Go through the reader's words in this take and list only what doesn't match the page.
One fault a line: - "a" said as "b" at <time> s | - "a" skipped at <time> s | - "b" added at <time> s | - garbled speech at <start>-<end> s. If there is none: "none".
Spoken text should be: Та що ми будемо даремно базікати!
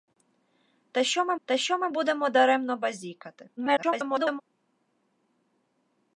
- "та що ми" added at 1.4 s
- garbled speech at 3.6-4.4 s